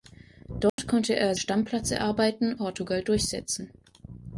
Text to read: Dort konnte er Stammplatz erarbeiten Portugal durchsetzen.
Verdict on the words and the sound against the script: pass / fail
fail